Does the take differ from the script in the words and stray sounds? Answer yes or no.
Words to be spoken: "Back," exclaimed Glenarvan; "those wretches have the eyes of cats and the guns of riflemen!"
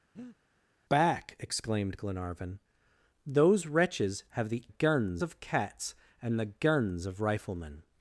yes